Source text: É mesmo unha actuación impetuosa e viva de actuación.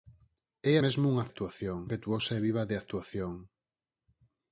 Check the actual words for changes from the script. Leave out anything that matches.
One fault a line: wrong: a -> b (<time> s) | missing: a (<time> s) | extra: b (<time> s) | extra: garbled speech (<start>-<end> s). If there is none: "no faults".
no faults